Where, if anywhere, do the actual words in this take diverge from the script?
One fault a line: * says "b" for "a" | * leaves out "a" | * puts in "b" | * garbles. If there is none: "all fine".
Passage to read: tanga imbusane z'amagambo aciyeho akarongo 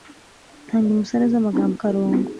* leaves out "aciyeho"